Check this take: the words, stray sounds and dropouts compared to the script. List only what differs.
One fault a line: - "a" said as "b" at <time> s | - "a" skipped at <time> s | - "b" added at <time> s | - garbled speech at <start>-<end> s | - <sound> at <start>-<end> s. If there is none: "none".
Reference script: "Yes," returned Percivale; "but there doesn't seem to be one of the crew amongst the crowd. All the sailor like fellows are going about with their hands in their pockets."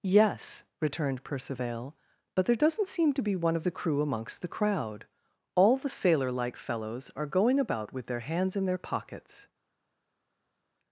none